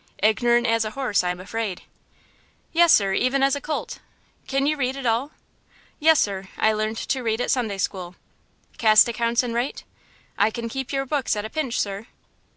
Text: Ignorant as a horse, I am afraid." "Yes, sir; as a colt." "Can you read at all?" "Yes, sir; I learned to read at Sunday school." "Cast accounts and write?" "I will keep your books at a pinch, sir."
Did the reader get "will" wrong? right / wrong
wrong